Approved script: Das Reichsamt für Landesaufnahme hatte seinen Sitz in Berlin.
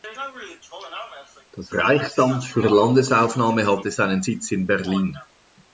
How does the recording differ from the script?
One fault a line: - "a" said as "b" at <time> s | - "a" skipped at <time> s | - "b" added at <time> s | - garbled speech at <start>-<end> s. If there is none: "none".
none